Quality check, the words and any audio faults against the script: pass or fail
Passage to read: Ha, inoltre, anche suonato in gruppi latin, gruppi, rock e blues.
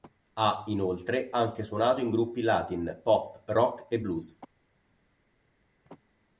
fail